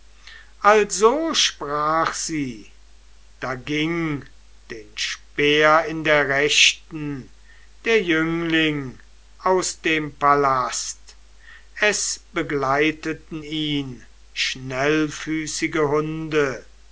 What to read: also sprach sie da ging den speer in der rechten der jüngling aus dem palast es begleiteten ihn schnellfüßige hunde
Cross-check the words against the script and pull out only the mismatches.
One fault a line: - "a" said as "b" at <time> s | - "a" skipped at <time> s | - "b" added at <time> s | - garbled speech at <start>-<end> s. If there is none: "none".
none